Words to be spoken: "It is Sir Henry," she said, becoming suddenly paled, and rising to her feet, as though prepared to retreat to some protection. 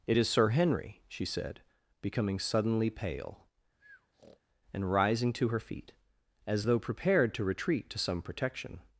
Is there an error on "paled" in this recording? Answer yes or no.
yes